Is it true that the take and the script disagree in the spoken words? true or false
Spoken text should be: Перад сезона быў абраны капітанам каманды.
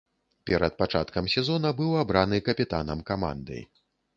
true